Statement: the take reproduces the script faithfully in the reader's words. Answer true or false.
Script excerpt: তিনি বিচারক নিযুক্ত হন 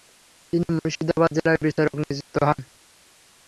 false